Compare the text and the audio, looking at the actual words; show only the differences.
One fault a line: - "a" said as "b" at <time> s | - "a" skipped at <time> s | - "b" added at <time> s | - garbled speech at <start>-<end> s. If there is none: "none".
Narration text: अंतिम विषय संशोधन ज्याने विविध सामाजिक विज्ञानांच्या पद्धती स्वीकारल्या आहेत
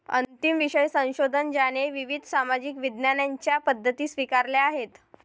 none